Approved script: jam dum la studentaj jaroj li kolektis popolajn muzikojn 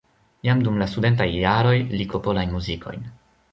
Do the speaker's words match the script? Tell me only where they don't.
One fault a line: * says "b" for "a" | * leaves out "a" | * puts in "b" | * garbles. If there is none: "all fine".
* leaves out "kolektis"